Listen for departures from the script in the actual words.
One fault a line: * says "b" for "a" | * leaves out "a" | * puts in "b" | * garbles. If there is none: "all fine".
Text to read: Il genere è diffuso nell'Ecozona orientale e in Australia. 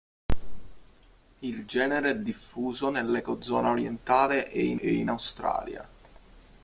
* puts in "e in"